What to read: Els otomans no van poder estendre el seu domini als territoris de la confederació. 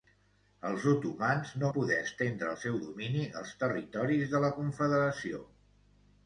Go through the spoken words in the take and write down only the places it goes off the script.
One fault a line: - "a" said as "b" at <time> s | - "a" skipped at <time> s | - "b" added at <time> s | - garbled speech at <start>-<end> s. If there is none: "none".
- "van" skipped at 1.7 s